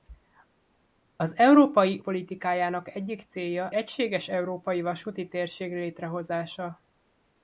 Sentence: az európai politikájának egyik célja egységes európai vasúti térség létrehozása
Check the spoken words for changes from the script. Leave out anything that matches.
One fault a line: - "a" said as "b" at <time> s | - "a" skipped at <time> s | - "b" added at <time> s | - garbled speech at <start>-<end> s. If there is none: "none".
none